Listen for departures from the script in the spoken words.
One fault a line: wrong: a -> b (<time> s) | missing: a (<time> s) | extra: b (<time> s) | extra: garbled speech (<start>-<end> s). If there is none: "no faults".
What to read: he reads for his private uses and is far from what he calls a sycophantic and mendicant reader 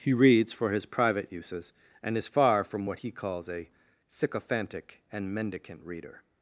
no faults